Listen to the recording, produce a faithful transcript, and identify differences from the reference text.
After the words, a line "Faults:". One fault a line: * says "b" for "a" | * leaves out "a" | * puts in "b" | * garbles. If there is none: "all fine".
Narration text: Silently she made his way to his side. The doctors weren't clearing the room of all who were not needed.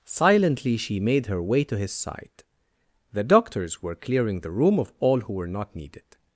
Silently she made her way to his side. The doctors were clearing the room of all who were not needed.
Faults:
* says "her" for "his"
* says "were" for "weren't"